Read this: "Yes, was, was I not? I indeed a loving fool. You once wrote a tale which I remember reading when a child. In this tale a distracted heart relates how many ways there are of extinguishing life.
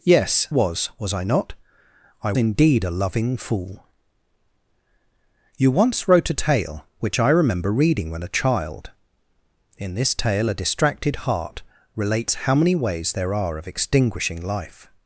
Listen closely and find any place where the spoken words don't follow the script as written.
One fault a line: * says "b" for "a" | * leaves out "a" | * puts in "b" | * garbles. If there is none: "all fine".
all fine